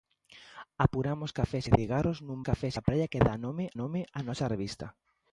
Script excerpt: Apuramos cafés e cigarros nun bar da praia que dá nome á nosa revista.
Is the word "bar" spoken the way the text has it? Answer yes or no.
no